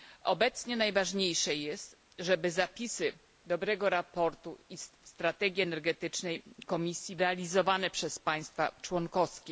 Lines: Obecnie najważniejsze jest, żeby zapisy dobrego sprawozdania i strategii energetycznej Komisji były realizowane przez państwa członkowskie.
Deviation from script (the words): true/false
true